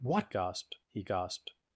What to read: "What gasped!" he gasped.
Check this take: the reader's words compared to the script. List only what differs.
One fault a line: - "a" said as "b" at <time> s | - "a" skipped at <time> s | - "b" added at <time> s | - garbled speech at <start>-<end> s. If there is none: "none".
none